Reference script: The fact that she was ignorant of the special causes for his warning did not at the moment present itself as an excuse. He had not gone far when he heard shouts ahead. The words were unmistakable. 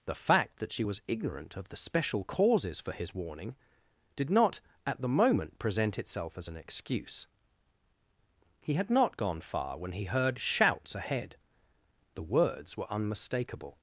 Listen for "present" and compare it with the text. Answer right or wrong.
right